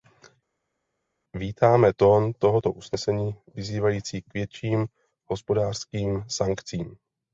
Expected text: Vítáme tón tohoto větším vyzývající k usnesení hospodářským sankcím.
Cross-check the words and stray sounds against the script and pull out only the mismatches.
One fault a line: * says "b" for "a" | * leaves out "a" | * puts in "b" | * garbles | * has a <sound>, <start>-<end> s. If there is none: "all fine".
* says "usnesení" for "větším"
* says "větším" for "usnesení"